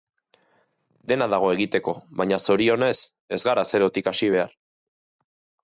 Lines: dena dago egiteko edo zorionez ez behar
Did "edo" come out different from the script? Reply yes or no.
yes